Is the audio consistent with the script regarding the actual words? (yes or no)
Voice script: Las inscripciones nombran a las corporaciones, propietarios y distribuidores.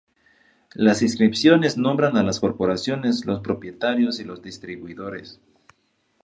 no